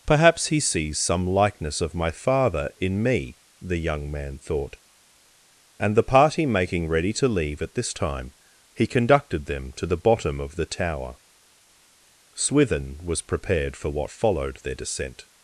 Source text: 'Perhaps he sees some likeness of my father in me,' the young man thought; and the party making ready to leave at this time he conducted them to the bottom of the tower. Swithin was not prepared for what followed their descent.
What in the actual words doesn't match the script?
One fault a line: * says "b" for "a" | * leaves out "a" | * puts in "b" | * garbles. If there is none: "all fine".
* leaves out "not"